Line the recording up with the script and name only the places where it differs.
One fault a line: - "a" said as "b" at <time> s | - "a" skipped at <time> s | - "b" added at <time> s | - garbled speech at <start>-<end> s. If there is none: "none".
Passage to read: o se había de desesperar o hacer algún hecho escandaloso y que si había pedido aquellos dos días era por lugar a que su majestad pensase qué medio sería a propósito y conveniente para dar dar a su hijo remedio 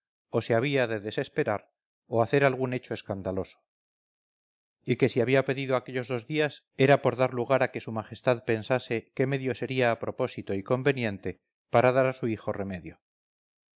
- "dar" added at 7.2 s
- "dar" skipped at 12.1 s